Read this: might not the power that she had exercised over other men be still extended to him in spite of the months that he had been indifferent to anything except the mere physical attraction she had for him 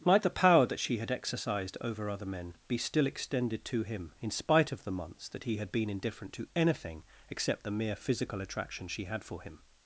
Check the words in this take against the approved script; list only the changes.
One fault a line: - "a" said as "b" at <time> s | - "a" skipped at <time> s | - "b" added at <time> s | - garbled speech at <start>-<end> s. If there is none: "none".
- "not" skipped at 0.2 s